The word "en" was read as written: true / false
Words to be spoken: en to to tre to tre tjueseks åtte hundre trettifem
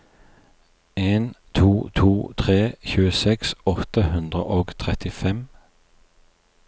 true